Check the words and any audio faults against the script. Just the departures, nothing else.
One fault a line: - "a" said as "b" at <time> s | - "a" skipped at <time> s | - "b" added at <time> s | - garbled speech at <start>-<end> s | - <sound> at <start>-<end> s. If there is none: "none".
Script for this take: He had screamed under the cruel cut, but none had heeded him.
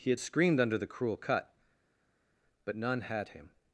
- "heeded" skipped at 3.3 s